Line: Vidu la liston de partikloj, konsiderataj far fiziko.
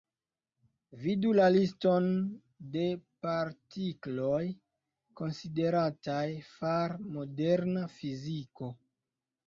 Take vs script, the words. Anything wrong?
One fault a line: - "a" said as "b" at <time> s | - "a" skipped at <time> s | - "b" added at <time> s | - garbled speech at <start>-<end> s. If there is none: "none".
- "moderna" added at 7.2 s